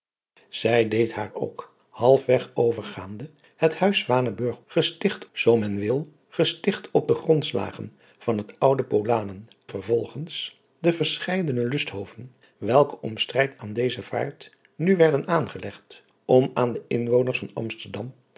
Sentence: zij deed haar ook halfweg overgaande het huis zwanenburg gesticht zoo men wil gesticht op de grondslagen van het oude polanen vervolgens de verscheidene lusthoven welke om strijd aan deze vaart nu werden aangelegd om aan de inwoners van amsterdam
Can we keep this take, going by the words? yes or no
yes